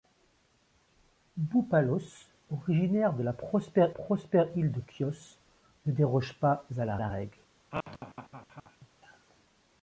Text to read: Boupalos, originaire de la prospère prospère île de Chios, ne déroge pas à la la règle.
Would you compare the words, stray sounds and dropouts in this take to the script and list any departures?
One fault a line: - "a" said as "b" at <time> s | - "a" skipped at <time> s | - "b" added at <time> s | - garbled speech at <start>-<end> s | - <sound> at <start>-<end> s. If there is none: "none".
- laugh at 7.7-8.9 s